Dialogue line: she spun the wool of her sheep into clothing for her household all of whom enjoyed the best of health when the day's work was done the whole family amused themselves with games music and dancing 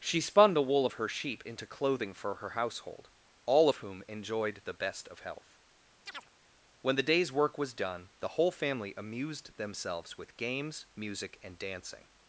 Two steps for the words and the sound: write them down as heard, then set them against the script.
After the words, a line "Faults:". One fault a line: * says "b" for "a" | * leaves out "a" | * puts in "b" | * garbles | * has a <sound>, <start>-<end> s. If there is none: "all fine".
she spun the wool of her sheep into clothing for her household all of whom enjoyed the best of health when the day's work was done the whole family amused themselves with games music and dancing
Faults:
* has a chirp, 6.1-6.3 s